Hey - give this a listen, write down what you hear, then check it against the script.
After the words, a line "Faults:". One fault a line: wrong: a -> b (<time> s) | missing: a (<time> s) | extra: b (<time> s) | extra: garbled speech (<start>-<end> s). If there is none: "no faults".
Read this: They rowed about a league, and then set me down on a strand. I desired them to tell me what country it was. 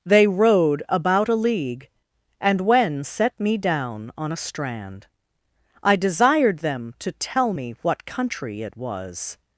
They rowed about a league, and when set me down on a strand. I desired them to tell me what country it was.
Faults:
wrong: then -> when (2.6 s)